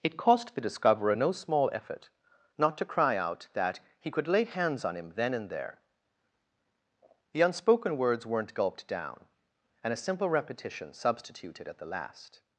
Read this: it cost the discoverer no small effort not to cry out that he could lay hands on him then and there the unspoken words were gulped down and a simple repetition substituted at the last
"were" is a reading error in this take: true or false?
true